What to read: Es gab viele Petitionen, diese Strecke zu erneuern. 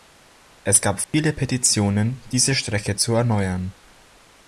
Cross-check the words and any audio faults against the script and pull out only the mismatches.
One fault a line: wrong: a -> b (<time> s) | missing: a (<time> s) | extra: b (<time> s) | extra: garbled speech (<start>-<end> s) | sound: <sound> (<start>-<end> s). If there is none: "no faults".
sound: dropout (1.0-1.1 s)